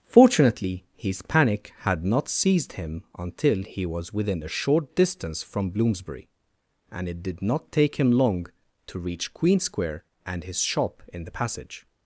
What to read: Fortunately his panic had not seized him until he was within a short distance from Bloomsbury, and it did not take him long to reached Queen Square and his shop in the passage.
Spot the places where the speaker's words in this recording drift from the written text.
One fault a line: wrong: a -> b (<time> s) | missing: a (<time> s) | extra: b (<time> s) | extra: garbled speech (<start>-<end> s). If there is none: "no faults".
wrong: reached -> reach (9.0 s)